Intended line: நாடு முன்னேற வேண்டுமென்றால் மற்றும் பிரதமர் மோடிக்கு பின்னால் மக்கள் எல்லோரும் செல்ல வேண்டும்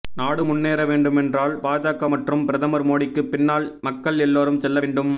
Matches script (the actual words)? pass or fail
fail